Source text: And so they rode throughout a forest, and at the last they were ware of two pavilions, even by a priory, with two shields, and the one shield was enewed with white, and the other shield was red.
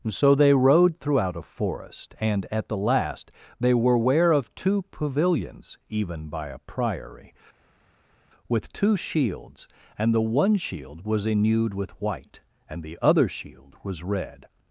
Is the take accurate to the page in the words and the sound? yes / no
no